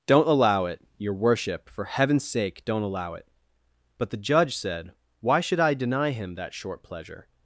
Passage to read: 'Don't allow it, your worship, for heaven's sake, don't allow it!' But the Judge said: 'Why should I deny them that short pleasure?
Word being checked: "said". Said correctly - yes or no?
yes